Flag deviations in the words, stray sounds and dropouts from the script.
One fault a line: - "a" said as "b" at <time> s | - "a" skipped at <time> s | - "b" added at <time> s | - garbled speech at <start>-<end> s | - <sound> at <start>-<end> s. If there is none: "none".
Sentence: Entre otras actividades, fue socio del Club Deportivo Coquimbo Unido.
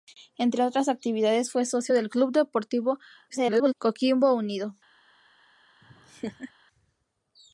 - garbled speech at 3.3-3.7 s
- laugh at 5.8-6.5 s